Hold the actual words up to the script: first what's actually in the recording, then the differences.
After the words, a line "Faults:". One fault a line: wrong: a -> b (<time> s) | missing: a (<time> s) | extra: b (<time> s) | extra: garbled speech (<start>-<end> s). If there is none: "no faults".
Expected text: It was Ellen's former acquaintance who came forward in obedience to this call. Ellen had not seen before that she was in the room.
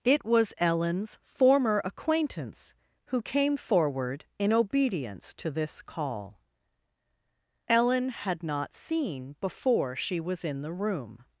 It was Ellen's former acquaintance who came forward in obedience to this call. Ellen had not seen before she was in the room.
Faults:
missing: that (9.9 s)